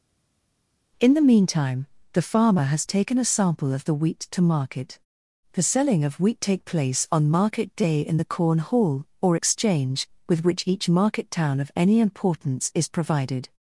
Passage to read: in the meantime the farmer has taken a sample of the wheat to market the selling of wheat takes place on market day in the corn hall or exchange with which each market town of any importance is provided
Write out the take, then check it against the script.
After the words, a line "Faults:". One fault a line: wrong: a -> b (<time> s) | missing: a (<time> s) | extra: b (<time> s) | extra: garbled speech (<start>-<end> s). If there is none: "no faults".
in the meantime the farmer has taken a sample of the wheat to market the selling of wheat take place on market day in the corn hall or exchange with which each market town of any importance is provided
Faults:
wrong: takes -> take (6.4 s)